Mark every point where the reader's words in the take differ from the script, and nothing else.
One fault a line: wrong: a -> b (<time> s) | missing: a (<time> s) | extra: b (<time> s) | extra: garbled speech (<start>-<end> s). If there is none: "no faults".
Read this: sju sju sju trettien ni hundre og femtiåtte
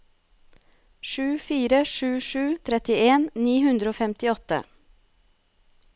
extra: fire (1.5 s)